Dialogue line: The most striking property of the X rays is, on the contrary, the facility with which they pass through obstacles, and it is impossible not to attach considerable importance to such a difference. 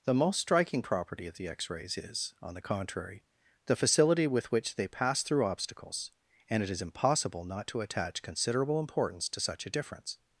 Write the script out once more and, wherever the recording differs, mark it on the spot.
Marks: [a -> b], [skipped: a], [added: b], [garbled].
The most striking property of the X rays is, on the contrary, the facility with which they pass through obstacles, and it is impossible not to attach considerable importance to such a difference.